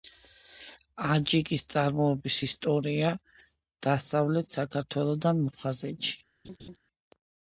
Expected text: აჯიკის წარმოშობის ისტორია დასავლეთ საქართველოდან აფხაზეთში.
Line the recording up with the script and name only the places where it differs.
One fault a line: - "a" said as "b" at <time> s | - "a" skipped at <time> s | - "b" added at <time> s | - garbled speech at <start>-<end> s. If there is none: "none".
none